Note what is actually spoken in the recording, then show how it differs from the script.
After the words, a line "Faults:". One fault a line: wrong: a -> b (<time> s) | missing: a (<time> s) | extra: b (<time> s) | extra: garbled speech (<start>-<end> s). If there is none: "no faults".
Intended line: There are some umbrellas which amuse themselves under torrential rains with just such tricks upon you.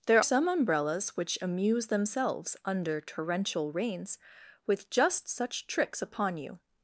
There some umbrellas which amuse themselves under torrential rains with just such tricks upon you.
Faults:
missing: are (0.2 s)